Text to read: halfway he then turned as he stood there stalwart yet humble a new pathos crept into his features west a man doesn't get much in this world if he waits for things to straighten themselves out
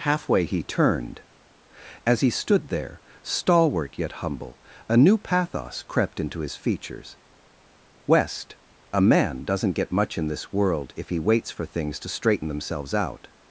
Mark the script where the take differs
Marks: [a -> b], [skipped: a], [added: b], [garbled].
halfway he [skipped: then] turned as he stood there stalwart yet humble a new pathos crept into his features west a man doesn't get much in this world if he waits for things to straighten themselves out